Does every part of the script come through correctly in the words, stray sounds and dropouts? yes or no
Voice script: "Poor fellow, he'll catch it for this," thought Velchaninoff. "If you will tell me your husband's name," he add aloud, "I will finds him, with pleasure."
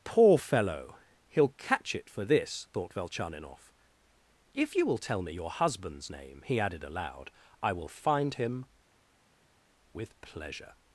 no